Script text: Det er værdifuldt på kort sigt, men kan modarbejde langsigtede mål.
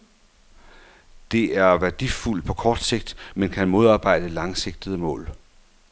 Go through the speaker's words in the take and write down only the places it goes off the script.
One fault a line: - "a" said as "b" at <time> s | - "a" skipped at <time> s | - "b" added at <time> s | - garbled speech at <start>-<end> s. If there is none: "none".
none